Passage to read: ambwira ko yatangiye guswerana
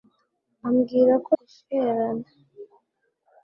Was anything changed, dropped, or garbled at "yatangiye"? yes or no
yes